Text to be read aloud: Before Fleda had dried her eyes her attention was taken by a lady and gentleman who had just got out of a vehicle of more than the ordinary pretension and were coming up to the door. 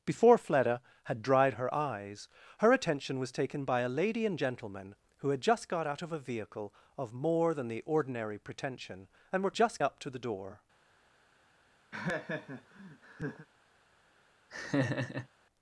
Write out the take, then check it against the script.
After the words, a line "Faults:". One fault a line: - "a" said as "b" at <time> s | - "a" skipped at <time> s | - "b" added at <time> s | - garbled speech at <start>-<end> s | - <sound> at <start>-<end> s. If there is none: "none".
Before Fleda had dried her eyes her attention was taken by a lady and gentleman who had just got out of a vehicle of more than the ordinary pretension and were just up to the door.
Faults:
- "coming" said as "just" at 9.5 s
- laugh at 11.9-13.5 s
- laugh at 14.5-15.3 s